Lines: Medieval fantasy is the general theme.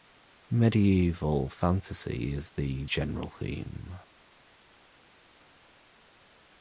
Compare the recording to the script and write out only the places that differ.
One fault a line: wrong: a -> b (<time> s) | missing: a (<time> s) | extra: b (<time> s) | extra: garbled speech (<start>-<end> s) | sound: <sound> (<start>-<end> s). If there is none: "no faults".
no faults